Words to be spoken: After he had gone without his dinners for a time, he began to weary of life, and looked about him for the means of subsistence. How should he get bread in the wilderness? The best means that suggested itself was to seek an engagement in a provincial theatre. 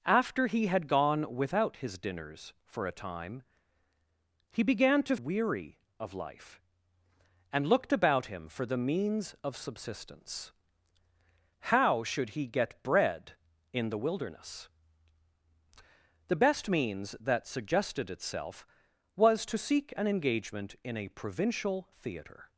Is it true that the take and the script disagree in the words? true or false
false